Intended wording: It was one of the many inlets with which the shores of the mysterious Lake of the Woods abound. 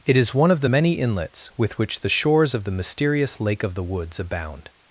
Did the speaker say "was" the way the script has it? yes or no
no